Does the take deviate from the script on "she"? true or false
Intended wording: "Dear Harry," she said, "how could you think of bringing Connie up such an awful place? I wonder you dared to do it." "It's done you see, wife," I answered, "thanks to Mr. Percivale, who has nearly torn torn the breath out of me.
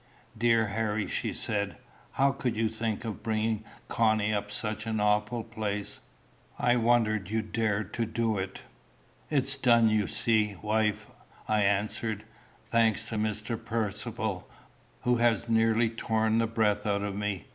false